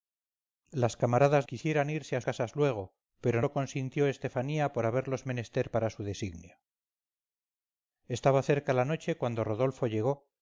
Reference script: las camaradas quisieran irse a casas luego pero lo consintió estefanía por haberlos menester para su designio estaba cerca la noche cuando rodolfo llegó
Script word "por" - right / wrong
right